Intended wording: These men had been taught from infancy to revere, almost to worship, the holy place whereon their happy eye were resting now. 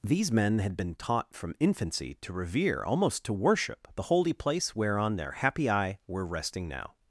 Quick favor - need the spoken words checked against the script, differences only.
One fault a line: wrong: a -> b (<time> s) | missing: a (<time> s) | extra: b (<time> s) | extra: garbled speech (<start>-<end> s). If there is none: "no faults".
no faults